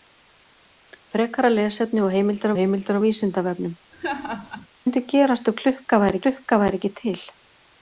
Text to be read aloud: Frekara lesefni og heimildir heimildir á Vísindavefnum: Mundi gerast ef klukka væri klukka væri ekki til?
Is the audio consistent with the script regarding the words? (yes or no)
yes